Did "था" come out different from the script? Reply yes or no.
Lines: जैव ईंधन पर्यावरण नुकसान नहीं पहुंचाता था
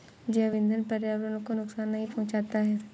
yes